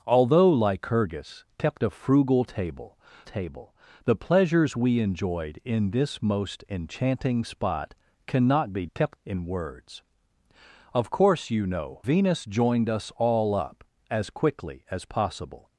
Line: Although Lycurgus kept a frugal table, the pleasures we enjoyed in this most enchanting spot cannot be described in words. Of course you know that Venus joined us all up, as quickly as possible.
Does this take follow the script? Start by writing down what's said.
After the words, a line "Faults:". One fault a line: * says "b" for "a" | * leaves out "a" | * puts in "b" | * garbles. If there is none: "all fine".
Although Lycurgus kept a frugal table table, the pleasures we enjoyed in this most enchanting spot cannot be kept in words. Of course you know Venus joined us all up, as quickly as possible.
Faults:
* puts in "table"
* says "kept" for "described"
* leaves out "that"